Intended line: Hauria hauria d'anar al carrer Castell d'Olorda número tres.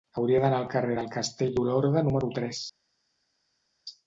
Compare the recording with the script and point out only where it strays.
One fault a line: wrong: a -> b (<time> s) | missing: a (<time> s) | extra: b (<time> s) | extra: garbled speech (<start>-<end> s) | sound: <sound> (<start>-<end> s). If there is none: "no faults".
missing: hauria (0.4 s)
extra: del (1.0 s)